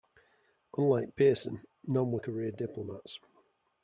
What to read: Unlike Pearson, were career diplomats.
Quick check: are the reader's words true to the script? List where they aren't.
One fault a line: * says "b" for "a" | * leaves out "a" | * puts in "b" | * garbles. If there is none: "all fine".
* puts in "none"